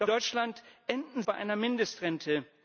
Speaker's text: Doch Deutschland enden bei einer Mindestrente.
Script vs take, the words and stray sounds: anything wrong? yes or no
no